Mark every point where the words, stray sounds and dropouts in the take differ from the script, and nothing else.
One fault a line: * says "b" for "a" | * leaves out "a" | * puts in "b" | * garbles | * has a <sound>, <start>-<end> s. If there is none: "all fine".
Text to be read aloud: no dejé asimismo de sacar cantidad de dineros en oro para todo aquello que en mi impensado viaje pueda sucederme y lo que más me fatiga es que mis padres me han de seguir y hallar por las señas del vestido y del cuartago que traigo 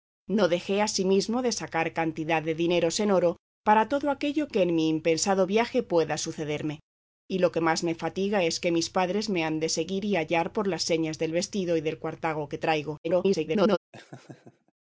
* garbles
* has a laugh, 13.9-14.7 s